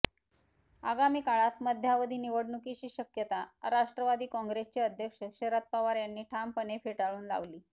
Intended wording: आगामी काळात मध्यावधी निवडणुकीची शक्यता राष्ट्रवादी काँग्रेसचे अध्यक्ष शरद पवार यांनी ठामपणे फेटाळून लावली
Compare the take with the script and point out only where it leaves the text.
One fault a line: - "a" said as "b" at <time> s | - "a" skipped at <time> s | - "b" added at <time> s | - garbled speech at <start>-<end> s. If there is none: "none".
none